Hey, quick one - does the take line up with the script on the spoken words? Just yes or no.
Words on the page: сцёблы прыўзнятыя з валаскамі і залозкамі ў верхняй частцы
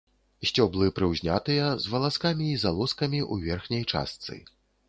yes